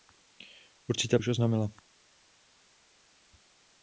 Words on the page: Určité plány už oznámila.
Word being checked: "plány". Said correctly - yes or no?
no